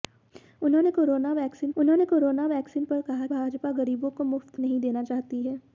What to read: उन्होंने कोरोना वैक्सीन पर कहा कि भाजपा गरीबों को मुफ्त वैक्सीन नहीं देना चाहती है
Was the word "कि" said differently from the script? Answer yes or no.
yes